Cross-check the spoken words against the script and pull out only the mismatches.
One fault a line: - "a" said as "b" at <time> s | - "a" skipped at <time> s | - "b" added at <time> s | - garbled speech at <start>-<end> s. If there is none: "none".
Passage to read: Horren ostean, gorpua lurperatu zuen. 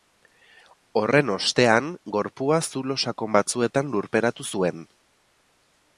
- "zulo sakon batzuetan" added at 2.7 s